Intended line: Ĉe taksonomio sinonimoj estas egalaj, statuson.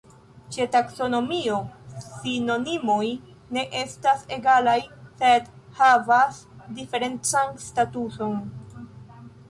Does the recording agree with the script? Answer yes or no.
no